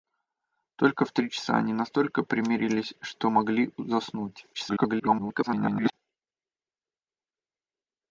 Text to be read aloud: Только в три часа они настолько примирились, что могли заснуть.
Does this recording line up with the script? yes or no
no